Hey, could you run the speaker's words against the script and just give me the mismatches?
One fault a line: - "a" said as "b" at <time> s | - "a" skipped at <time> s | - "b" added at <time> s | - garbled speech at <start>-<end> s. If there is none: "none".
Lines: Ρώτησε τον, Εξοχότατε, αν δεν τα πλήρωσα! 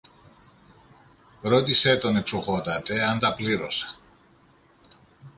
- "δεν" skipped at 3.2 s